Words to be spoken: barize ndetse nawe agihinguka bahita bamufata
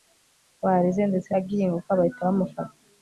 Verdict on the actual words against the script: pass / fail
fail